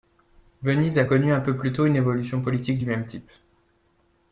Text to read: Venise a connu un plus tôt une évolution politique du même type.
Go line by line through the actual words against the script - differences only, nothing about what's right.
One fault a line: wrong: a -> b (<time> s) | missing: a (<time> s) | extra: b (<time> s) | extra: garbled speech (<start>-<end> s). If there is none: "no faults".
extra: peu (1.4 s)